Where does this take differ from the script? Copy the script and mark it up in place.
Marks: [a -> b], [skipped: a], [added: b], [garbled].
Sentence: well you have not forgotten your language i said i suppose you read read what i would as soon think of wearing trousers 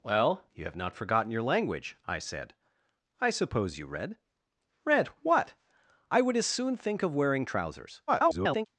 well you have not forgotten your language i said i suppose you read read what i would as soon think of wearing trousers [garbled]